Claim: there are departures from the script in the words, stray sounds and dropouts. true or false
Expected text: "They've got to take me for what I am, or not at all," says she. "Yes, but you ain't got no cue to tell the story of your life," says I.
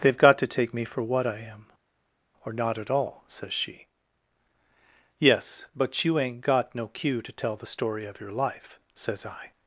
false